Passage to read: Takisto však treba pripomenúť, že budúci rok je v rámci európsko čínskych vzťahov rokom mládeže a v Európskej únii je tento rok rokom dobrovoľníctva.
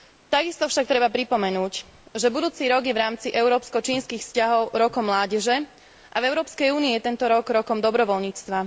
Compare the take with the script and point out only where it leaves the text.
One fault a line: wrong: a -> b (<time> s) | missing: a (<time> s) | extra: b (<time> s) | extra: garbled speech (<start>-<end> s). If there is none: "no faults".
no faults